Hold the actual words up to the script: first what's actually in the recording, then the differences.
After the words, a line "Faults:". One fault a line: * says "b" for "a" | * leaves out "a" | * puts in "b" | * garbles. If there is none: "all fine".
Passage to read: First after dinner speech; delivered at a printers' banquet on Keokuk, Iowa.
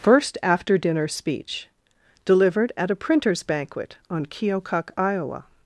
First after dinner speech; delivered at a printers' banquet on Keokuk, Iowa.
Faults:
all fine